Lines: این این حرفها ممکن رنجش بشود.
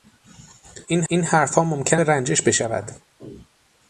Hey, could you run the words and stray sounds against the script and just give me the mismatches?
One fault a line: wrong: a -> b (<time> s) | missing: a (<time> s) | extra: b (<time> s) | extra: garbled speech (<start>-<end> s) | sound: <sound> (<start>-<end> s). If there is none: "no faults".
no faults